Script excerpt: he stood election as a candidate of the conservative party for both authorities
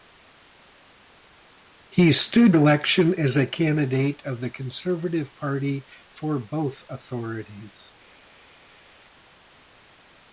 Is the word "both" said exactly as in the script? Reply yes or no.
yes